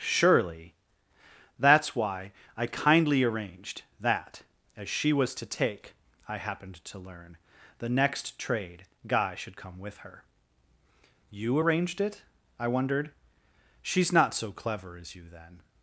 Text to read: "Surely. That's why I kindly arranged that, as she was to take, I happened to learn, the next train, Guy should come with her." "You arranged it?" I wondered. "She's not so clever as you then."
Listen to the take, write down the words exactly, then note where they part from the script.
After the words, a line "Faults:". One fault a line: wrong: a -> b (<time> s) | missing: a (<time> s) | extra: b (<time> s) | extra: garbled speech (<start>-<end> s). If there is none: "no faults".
"Surely. That's why I kindly arranged that, as she was to take, I happened to learn, the next trade, Guy should come with her." "You arranged it?" I wondered. "She's not so clever as you then."
Faults:
wrong: train -> trade (8.4 s)